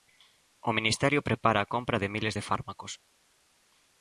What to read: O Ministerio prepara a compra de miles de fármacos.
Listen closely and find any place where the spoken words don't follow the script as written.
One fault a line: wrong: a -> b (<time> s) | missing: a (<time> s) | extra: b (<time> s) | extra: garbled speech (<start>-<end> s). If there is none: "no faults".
no faults